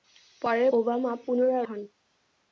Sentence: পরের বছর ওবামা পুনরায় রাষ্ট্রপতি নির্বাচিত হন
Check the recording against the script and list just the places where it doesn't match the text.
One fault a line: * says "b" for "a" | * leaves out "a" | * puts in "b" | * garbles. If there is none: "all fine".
* leaves out "বছর"
* leaves out "রাষ্ট্রপতি নির্বাচিত"